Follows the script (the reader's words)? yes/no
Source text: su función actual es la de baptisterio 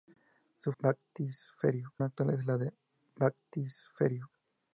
no